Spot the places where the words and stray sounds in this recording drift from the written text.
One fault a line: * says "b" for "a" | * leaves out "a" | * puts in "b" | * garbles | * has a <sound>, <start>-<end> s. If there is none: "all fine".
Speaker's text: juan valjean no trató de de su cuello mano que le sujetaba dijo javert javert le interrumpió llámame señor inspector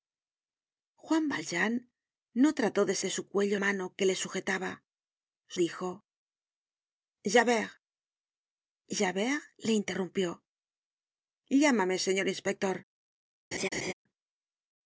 * has a laugh, 13.5-13.9 s